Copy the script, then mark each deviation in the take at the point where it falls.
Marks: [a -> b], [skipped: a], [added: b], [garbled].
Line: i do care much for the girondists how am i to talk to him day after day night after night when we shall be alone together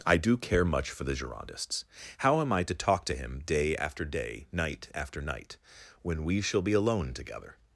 i do care much for the girondists how am i to talk to him day after day night after night when we shall be alone together